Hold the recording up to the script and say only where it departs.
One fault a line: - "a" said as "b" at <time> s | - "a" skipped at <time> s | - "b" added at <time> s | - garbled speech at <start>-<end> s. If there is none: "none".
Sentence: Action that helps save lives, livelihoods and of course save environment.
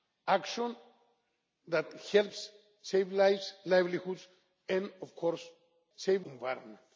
none